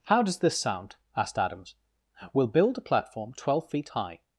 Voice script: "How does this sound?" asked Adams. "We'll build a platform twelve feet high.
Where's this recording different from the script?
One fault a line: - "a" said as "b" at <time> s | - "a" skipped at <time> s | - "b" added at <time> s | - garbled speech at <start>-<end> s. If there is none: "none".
none